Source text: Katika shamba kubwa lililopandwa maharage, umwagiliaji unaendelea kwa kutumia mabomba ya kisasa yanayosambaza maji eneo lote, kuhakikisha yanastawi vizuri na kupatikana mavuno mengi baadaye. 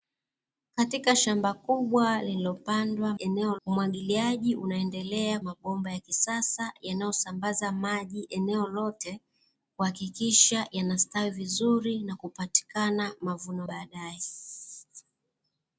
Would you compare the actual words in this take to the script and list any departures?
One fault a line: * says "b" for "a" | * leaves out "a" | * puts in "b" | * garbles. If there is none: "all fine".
* says "eneo" for "maharage"
* leaves out "kwa kutumia"
* leaves out "mengi"